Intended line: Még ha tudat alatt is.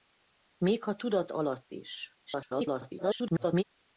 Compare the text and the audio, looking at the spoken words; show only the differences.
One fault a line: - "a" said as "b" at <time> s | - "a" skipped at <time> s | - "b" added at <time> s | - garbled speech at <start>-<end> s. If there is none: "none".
- garbled speech at 2.3-3.6 s